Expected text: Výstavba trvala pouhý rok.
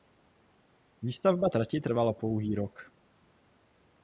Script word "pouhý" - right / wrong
right